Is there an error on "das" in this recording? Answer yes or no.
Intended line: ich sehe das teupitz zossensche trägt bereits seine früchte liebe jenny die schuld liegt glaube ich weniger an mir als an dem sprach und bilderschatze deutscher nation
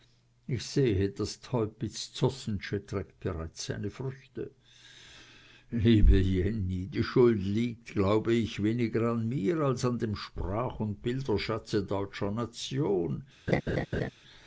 no